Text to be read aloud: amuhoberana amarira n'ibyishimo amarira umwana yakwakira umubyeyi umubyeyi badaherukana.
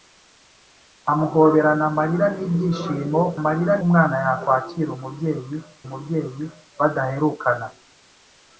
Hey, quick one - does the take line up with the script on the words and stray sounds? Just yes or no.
yes